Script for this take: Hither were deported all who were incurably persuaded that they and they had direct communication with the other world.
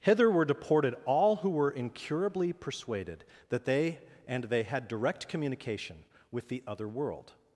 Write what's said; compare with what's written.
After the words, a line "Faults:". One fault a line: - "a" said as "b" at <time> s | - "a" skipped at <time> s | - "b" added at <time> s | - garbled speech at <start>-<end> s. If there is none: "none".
Hither were deported all who were incurably persuaded that they and they had direct communication with the other world.
Faults:
none